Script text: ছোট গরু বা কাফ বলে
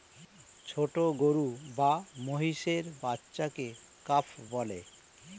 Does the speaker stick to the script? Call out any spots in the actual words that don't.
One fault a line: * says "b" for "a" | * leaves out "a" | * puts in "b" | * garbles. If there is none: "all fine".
* puts in "মহিষের বাচ্চাকে"